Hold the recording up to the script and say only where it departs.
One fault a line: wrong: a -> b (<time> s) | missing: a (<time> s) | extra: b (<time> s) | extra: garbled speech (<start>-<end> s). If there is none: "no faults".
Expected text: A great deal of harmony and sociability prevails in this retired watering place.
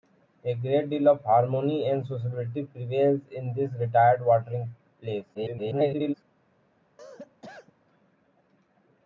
extra: garbled speech (5.3-6.1 s)